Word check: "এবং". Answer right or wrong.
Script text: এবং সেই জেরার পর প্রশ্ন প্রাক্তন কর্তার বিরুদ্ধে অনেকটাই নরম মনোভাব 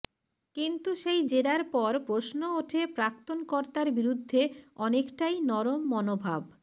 wrong